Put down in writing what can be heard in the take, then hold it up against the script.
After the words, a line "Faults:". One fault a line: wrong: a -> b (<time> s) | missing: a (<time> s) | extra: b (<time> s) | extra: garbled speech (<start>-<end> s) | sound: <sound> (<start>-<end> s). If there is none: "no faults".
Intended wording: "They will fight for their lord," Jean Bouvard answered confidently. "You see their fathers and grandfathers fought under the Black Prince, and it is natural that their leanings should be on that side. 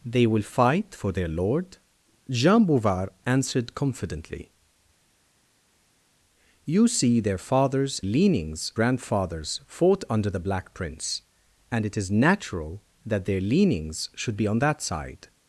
"They will fight for their lord," Jean Bouvard answered confidently. "You see their fathers leanings grandfathers fought under the Black Prince, and it is natural that their leanings should be on that side.
Faults:
wrong: and -> leanings (8.0 s)